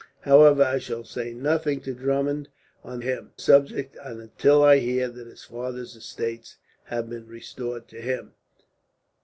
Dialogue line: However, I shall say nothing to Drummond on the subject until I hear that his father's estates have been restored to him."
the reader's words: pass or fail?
fail